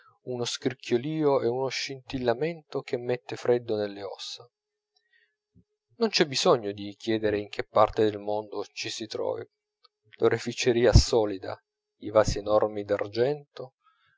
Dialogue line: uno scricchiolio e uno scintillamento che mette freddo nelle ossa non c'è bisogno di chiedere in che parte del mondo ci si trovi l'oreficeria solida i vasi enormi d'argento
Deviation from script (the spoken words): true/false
false